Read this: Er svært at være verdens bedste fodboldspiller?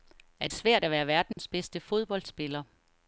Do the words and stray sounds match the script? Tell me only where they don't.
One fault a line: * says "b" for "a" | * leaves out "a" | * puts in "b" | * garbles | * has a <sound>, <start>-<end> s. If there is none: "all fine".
* has a dropout, 1.3-1.4 s